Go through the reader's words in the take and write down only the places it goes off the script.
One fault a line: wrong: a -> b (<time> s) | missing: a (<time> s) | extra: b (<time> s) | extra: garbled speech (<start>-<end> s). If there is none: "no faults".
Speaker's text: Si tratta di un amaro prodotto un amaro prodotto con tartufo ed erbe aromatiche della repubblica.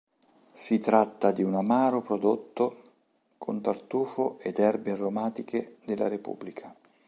missing: un amaro prodotto (2.8 s)